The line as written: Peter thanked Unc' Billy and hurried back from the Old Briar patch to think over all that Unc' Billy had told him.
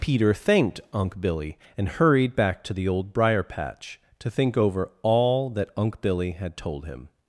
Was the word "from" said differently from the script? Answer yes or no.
yes